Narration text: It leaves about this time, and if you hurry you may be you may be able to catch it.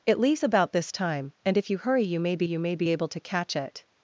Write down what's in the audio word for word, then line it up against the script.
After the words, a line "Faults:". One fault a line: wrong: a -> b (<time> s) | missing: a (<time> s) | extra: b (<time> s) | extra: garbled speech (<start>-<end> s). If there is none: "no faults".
It leaves about this time, and if you hurry you may be you may be able to catch it.
Faults:
no faults